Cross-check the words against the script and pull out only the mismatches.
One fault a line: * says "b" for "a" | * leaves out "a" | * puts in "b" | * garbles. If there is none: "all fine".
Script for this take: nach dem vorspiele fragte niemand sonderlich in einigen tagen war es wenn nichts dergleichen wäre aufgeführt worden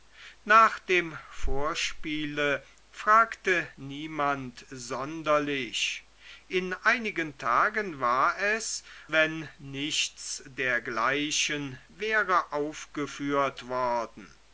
all fine